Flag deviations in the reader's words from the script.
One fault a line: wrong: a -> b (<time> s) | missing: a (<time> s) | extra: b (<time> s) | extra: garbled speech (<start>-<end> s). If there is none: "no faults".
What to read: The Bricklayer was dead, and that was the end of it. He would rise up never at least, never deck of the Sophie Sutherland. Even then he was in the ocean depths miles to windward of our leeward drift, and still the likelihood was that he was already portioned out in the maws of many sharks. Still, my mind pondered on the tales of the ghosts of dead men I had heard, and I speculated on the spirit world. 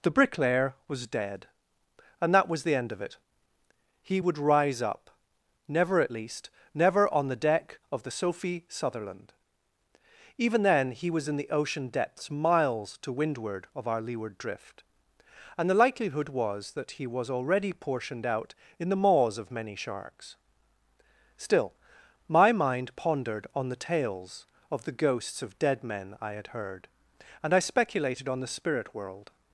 extra: on the (7.1 s)
missing: still (15.7 s)